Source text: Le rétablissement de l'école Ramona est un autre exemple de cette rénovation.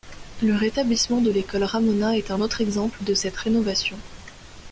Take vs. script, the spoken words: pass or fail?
pass